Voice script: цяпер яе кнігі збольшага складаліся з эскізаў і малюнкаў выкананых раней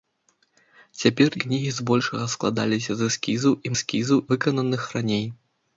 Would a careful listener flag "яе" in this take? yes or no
yes